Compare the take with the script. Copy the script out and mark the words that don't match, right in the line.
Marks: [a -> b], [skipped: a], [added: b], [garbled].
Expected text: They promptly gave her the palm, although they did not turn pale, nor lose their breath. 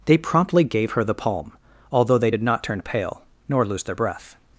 They promptly gave her the palm, although they did not turn pale, nor lose their breath.